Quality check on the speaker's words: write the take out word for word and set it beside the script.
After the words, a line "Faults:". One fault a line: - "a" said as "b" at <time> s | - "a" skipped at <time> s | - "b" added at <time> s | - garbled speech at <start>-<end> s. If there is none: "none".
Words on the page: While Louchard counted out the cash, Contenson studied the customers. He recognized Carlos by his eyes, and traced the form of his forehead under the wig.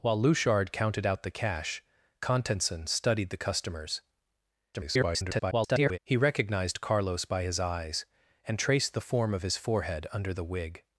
While Louchard counted out the cash, Contenson studied the customers. [garbled] He recognized Carlos by his eyes, and traced the form of his forehead under the wig.
Faults:
- garbled speech at 4.7-6.0 s